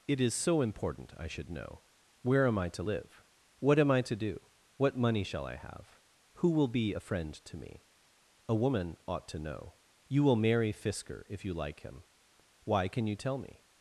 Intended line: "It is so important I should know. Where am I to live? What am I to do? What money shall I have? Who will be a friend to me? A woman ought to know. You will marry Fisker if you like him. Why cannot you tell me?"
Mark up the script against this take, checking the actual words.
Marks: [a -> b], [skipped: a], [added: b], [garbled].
"It is so important I should know. Where am I to live? What am I to do? What money shall I have? Who will be a friend to me? A woman ought to know. You will marry Fisker if you like him. Why [cannot -> can] you tell me?"